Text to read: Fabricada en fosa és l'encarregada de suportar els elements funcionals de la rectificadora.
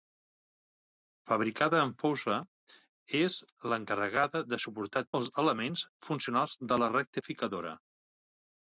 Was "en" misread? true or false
false